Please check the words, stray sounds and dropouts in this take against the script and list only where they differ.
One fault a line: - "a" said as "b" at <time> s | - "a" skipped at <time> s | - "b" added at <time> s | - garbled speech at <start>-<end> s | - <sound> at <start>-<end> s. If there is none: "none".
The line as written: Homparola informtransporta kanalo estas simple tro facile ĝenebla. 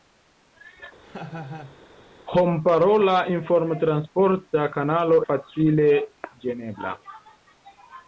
- laugh at 1.0-1.8 s
- "estas simple tro" skipped at 5.2 s